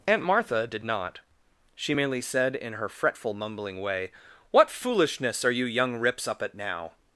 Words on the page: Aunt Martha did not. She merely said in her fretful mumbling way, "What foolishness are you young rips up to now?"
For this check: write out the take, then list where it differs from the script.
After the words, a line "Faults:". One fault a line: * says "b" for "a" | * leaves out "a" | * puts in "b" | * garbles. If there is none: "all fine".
Aunt Martha did not. She merely said in her fretful mumbling way, "What foolishness are you young rips up at now?"
Faults:
* says "at" for "to"